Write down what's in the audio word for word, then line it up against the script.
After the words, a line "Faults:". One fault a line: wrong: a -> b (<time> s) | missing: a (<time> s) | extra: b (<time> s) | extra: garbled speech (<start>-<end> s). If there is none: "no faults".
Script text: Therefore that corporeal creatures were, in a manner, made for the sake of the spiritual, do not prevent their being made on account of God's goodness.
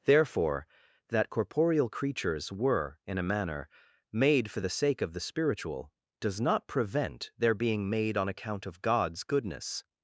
Therefore that corporeal creatures were, in a manner, made for the sake of the spiritual, does not prevent their being made on account of God's goodness.
Faults:
wrong: do -> does (6.2 s)